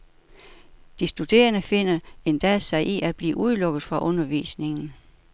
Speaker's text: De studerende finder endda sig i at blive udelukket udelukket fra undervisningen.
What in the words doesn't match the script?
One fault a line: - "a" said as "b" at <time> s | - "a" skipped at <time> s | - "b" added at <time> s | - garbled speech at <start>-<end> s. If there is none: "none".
- "udelukket" skipped at 3.8 s